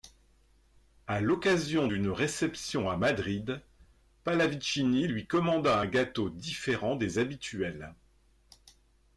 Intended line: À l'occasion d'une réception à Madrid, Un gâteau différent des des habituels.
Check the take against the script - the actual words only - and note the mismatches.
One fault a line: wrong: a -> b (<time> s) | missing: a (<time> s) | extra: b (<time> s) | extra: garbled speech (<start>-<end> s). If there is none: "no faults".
extra: Pallavicini lui commanda (4.2 s)
missing: des (7.2 s)